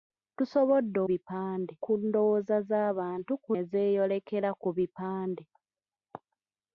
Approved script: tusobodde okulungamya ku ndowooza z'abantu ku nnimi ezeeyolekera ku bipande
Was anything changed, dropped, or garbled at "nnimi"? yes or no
yes